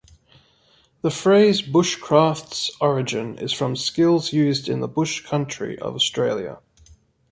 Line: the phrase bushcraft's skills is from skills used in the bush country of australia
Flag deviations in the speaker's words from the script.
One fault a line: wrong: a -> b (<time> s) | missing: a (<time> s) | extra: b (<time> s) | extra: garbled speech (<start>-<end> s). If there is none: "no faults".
wrong: skills -> origin (2.8 s)